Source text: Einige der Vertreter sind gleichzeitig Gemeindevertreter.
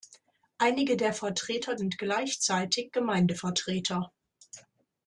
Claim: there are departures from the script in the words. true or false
false